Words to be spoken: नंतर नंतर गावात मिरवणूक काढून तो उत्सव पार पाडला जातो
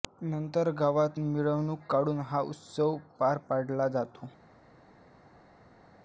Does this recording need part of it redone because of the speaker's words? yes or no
yes